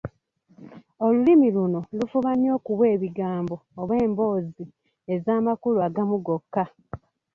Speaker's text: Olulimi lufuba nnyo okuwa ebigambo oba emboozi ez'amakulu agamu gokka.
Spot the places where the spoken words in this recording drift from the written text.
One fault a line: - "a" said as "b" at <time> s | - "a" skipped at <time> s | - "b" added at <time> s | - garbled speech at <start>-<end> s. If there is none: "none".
- "luno" added at 1.6 s